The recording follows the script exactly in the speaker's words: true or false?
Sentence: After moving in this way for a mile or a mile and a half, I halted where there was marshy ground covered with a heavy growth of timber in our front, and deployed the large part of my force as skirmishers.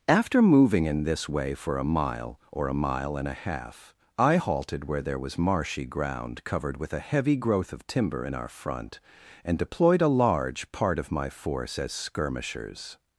false